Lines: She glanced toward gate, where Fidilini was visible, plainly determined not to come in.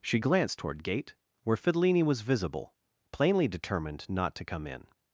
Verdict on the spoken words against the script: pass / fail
pass